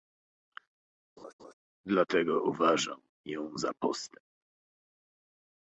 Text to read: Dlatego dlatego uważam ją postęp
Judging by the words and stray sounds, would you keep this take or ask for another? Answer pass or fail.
fail